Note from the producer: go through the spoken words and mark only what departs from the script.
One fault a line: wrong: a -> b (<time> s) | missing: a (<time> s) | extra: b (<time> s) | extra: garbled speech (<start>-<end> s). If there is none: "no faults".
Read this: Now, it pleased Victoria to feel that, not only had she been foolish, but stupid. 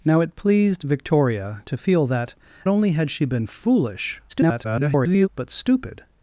missing: not (2.3 s)
extra: garbled speech (4.3-5.3 s)